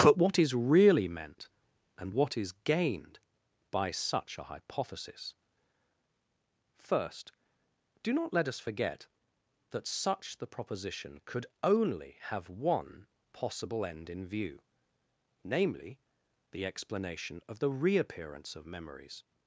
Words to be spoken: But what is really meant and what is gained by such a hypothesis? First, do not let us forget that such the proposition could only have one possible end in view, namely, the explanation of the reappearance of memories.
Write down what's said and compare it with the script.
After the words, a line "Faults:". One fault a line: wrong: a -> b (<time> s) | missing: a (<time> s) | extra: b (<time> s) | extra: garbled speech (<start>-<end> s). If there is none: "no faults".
But what is really meant and what is gained by such a hypothesis? First, do not let us forget that such the proposition could only have one possible end in view, namely, the explanation of the reappearance of memories.
Faults:
no faults